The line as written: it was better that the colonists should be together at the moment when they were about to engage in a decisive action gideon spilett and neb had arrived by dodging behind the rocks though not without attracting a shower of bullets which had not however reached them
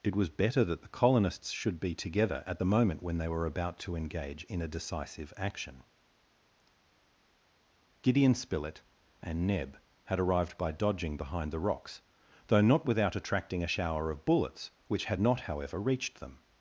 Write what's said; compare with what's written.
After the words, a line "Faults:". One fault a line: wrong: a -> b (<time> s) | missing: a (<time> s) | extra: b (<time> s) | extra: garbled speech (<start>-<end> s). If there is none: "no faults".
it was better that the colonists should be together at the moment when they were about to engage in a decisive action gideon spilett and neb had arrived by dodging behind the rocks though not without attracting a shower of bullets which had not however reached them
Faults:
no faults